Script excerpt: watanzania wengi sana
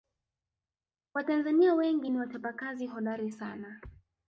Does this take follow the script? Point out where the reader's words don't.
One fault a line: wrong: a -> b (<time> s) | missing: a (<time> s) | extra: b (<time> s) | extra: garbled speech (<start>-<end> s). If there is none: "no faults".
extra: ni wachapakazi hodari (2.1 s)